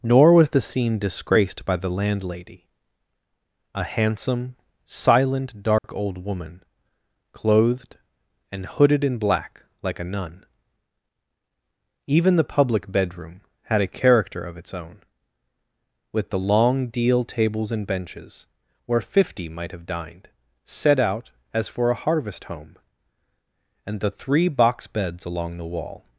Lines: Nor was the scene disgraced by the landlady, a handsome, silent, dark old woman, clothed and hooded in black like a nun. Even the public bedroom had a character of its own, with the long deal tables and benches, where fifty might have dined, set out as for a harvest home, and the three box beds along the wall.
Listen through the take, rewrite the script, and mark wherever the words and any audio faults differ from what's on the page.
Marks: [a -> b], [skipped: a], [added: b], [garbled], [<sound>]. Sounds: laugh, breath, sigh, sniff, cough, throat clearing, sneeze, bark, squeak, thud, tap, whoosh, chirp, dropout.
Nor was the scene disgraced by the landlady, a handsome, silent, dark [dropout] old woman, clothed and hooded in black like a nun. Even the public bedroom had a character of its own, with the long deal tables and benches, where fifty might have dined, set out as for a harvest home, and the three box beds along the wall.